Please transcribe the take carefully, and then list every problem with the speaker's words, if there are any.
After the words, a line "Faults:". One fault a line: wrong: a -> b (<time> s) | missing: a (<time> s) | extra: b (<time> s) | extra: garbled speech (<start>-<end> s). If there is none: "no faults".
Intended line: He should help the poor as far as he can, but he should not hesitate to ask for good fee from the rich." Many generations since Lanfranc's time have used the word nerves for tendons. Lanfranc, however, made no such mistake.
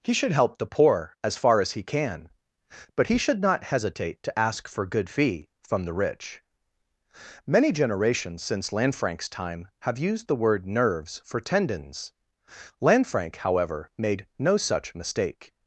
He should help the poor as far as he can, but he should not hesitate to ask for good fee from the rich." Many generations since Lanfranc's time have used the word nerves for tendons. Lanfranc, however, made no such mistake.
Faults:
no faults